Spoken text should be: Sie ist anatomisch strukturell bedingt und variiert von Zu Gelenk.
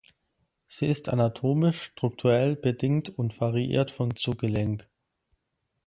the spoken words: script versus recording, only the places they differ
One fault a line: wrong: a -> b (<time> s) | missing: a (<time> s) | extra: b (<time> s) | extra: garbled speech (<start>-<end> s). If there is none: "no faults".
no faults